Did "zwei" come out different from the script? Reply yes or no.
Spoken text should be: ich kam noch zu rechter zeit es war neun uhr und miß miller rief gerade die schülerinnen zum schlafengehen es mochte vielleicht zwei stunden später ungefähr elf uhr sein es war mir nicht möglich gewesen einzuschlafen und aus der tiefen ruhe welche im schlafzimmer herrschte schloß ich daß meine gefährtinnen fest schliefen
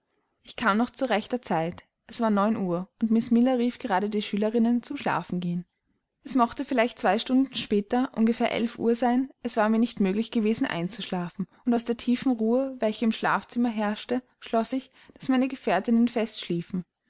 no